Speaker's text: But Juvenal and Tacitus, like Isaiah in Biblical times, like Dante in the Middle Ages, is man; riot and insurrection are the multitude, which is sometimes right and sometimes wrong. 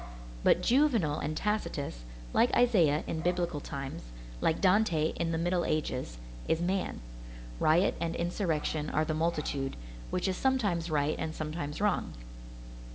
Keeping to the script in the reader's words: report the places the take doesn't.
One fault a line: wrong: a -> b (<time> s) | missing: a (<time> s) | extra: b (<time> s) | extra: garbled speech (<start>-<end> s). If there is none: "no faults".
no faults